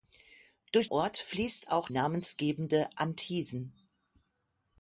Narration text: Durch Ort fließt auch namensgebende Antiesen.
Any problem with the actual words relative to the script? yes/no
no